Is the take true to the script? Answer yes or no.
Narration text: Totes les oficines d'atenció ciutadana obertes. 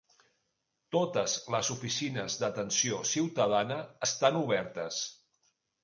no